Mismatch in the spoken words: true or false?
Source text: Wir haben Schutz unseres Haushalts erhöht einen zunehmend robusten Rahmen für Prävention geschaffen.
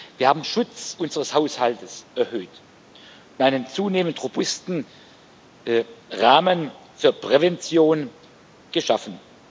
false